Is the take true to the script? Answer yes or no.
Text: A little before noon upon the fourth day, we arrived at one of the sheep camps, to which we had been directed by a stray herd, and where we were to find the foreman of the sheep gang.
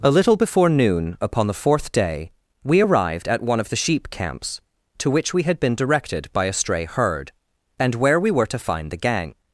no